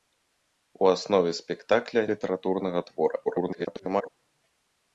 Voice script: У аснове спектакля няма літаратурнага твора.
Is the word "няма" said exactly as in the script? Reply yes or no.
no